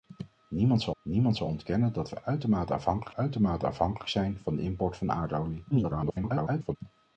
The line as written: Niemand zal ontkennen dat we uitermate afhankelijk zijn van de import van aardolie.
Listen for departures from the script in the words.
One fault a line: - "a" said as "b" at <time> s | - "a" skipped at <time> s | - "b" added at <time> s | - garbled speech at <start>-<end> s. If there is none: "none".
- "niemand zal" added at 1.0 s
- "uitermate afhankelijk" added at 3.1 s
- garbled speech at 5.7-6.8 s